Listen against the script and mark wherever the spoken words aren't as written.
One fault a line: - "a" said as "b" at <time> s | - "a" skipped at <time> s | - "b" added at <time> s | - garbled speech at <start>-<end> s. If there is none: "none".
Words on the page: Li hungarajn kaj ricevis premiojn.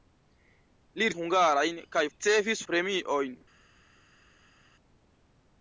none